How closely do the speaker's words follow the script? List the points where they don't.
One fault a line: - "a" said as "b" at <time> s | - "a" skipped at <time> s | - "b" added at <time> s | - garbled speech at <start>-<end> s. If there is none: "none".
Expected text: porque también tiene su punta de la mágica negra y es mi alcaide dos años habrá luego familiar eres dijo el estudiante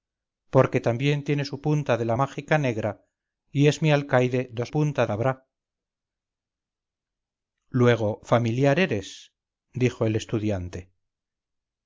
- "años" said as "punta" at 4.7 s